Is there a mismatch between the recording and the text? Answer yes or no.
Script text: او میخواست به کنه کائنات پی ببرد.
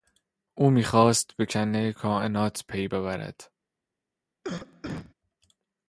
no